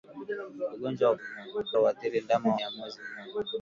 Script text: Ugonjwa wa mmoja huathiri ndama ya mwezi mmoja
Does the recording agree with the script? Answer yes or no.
yes